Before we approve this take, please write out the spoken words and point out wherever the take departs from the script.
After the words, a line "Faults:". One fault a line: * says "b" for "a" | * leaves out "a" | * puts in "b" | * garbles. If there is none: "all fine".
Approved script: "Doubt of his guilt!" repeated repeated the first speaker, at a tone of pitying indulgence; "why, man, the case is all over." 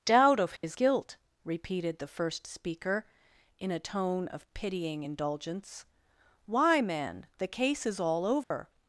"Doubt of his guilt!" repeated the first speaker, in a tone of pitying indulgence; "why, man, the case is all over."
Faults:
* leaves out "repeated"
* says "in" for "at"